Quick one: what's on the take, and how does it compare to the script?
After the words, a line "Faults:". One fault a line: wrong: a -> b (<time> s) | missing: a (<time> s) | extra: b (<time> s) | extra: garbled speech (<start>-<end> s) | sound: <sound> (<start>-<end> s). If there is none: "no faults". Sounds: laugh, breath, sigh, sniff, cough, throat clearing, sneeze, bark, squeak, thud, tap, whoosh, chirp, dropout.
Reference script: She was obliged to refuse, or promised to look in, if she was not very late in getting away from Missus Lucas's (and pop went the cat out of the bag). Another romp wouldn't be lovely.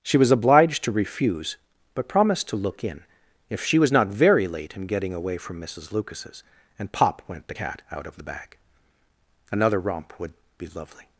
She was obliged to refuse, but promised to look in, if she was not very late in getting away from Missus Lucas's (and pop went the cat out of the bag). Another romp would be lovely.
Faults:
wrong: or -> but (1.9 s)
wrong: wouldn't -> would (10.2 s)